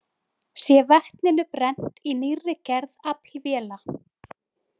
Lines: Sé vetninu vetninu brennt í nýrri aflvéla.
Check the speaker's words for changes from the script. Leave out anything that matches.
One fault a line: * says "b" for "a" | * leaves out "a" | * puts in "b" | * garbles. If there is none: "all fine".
* leaves out "vetninu"
* puts in "gerð"